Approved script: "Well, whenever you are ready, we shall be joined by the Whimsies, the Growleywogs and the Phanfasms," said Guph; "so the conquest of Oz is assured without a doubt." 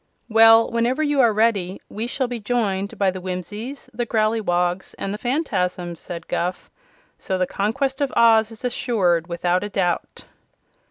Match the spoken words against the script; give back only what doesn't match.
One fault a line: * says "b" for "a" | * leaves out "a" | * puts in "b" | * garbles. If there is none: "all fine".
all fine